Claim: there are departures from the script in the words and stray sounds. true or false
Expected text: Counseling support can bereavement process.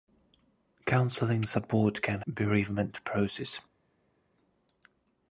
false